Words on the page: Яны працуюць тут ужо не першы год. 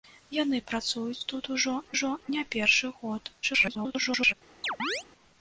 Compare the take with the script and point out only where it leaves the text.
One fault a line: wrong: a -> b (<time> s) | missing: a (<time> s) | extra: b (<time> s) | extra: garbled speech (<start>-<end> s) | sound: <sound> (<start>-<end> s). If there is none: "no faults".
extra: ужо (2.0 s)
extra: garbled speech (3.4-4.3 s)
sound: chirp (4.6-5.0 s)